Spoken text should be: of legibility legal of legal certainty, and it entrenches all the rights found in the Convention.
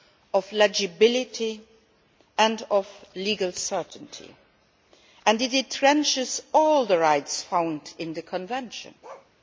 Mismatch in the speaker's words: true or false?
true